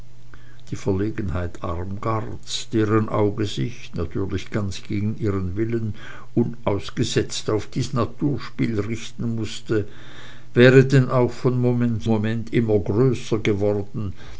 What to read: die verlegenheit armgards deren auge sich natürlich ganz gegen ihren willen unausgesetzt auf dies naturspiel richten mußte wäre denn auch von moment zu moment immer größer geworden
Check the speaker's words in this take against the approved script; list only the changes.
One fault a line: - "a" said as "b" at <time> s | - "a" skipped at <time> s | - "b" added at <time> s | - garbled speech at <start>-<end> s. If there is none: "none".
- "zu" skipped at 12.0 s